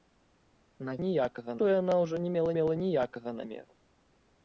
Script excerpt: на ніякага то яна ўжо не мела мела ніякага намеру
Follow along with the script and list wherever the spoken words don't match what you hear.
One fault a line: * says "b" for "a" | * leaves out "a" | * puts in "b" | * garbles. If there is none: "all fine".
all fine